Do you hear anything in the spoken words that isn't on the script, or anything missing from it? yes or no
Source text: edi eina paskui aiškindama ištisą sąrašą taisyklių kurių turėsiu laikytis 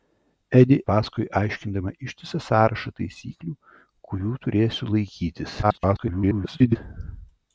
yes